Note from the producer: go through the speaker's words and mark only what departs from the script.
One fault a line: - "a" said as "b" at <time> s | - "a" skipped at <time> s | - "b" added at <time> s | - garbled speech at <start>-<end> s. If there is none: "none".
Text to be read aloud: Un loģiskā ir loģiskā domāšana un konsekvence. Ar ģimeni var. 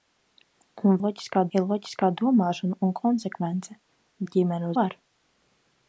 none